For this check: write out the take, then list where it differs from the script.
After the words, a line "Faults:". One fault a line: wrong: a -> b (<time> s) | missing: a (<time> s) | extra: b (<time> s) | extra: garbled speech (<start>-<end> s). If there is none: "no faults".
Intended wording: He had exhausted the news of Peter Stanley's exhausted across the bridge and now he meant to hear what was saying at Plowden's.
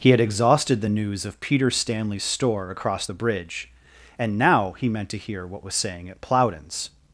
He had exhausted the news of Peter Stanley's store across the bridge and now he meant to hear what was saying at Plowden's.
Faults:
wrong: exhausted -> store (2.2 s)